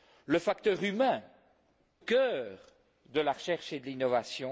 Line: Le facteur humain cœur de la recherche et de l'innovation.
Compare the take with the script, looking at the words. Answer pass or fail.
pass